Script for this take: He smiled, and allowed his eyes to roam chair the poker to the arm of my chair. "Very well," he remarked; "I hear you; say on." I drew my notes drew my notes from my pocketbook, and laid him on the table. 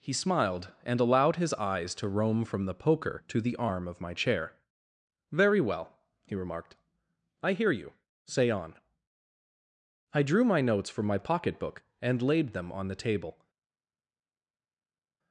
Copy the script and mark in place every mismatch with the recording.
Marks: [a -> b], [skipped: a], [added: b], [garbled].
He smiled, and allowed his eyes to roam [chair -> from] the poker to the arm of my chair. "Very well," he remarked; "I hear you; say on." I drew my notes [skipped: drew my notes] from my pocketbook, and laid [him -> them] on the table.